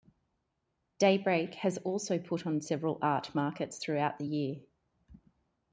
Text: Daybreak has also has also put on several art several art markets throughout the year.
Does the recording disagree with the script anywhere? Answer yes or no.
yes